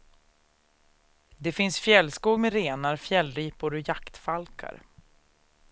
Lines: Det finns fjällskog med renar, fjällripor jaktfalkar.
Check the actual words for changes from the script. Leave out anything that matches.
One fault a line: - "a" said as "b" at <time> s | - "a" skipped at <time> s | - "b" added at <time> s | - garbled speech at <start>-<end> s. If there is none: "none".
- "och" added at 3.7 s